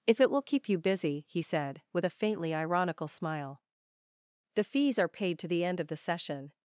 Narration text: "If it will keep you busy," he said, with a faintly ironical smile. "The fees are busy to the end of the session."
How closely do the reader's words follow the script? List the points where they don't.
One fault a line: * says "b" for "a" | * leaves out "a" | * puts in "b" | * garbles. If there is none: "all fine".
* says "paid" for "busy"